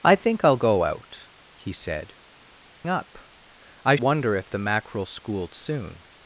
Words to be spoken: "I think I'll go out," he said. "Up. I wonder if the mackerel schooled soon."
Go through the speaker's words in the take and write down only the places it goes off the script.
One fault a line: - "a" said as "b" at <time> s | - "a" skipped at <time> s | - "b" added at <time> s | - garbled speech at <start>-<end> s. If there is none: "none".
none